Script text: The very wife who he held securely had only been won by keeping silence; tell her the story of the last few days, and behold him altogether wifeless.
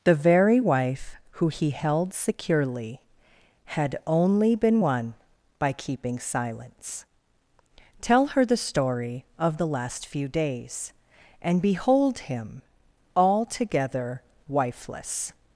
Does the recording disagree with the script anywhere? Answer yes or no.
no